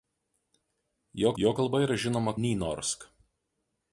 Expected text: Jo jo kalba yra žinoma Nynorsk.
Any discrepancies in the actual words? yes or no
no